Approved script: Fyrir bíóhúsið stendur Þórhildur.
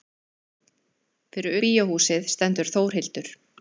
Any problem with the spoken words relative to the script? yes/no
no